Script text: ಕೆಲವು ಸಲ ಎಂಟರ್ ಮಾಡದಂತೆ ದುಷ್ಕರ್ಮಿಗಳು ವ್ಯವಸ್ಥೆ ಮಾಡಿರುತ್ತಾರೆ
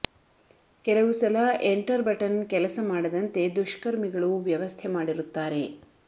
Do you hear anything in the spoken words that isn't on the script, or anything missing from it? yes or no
yes